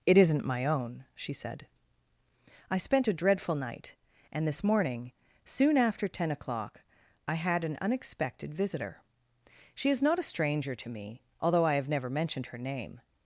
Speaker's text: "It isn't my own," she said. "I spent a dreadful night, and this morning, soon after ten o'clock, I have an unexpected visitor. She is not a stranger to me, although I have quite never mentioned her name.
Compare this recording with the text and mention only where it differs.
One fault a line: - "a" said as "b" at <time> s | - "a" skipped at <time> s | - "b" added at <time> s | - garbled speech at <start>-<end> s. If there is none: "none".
- "have" said as "had" at 7.3 s
- "quite" skipped at 11.9 s